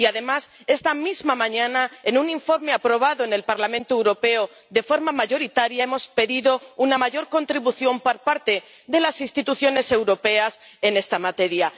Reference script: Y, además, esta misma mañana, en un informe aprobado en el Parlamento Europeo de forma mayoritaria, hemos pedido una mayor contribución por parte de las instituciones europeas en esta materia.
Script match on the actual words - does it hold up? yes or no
yes